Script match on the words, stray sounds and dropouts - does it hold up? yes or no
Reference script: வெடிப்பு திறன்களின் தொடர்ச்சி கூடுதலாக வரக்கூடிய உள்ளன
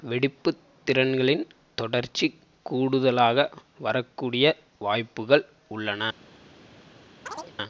no